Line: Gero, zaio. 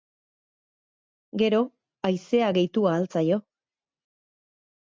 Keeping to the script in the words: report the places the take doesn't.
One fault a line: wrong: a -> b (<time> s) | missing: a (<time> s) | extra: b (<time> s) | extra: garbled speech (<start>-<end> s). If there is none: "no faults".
extra: haizea gehitu ahal (2.1 s)